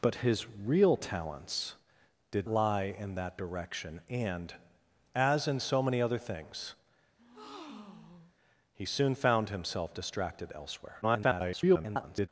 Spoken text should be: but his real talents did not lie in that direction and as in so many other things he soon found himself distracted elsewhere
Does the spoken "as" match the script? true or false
true